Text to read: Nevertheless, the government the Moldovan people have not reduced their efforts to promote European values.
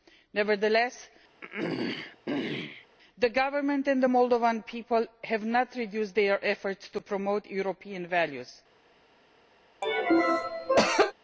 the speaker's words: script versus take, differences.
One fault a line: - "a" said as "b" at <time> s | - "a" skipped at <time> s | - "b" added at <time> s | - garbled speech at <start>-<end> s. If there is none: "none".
- "and" added at 3.9 s